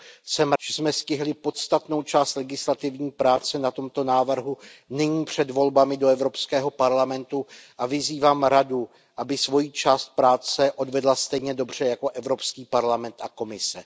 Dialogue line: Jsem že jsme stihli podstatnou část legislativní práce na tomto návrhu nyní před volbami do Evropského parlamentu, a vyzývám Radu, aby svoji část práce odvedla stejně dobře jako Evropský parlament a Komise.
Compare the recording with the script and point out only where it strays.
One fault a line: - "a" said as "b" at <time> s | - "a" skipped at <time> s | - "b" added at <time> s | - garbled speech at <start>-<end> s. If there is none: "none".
none